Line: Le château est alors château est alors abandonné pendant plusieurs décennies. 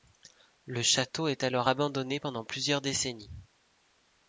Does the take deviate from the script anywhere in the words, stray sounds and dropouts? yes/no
yes